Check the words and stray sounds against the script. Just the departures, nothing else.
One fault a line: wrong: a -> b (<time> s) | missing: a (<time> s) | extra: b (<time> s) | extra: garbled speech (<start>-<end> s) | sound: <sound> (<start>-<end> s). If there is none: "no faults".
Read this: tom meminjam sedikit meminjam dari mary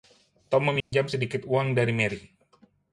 sound: dropout (0.8-0.9 s)
wrong: meminjam -> uang (1.5 s)